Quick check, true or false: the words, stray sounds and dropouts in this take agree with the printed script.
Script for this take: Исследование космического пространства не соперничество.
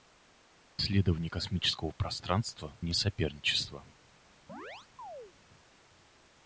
false